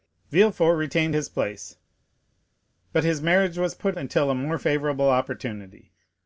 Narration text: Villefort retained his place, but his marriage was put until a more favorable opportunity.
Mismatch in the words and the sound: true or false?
false